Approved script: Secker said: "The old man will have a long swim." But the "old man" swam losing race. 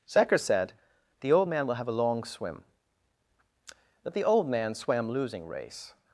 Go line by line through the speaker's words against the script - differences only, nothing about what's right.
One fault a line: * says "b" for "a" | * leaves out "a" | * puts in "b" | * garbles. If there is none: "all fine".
all fine